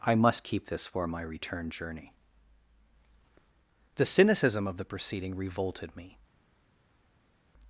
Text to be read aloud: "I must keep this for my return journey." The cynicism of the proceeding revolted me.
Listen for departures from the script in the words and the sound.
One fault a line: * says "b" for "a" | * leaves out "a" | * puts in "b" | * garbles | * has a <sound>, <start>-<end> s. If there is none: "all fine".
all fine